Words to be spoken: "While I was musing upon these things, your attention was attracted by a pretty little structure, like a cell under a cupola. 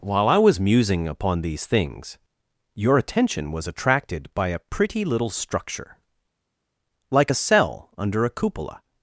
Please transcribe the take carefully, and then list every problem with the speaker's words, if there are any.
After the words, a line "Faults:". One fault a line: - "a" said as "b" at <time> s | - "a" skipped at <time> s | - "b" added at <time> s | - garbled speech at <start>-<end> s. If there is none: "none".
"While I was musing upon these things, your attention was attracted by a pretty little structure, like a cell under a cupola.
Faults:
none